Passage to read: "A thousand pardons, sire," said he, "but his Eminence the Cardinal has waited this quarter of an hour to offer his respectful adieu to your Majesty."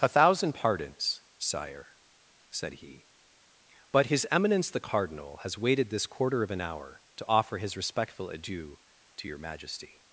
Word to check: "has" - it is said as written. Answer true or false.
true